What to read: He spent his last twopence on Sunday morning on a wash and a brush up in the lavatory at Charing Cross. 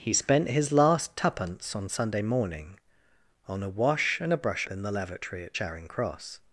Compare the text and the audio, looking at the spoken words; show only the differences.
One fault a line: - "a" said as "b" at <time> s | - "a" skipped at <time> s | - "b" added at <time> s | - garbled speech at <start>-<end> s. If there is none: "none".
- "up" skipped at 4.7 s